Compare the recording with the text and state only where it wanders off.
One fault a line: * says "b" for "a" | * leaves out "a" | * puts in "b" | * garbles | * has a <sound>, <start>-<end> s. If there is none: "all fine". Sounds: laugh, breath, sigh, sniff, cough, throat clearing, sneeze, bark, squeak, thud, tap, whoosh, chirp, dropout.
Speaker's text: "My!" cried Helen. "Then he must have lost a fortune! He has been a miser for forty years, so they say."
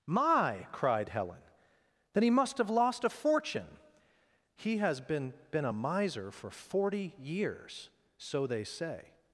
* puts in "been"